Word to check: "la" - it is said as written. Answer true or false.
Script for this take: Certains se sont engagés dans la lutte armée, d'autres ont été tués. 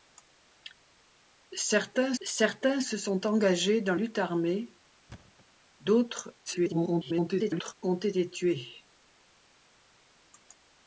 false